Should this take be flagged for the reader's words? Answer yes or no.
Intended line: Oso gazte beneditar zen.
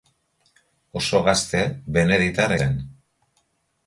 no